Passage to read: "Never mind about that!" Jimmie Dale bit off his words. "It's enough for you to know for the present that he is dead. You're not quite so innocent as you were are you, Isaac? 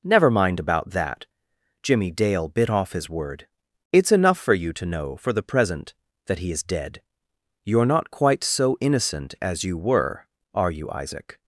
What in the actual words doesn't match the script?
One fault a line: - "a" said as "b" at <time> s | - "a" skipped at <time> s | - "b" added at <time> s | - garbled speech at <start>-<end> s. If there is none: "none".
- "words" said as "word" at 3.1 s